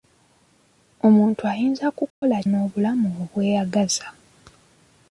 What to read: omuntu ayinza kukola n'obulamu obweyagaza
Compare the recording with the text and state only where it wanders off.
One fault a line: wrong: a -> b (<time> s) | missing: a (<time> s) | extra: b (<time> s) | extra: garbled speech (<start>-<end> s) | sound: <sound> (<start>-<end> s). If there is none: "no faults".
sound: dropout (2.1-2.2 s)